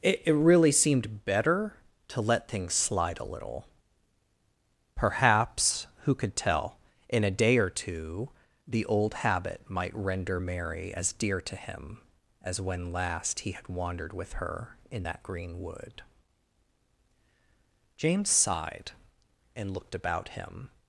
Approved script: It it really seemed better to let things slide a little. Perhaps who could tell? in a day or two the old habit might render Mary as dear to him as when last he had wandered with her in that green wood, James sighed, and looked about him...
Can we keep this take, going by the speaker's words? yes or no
yes